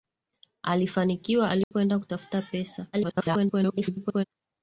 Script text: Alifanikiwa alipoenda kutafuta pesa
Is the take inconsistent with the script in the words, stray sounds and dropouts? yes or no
yes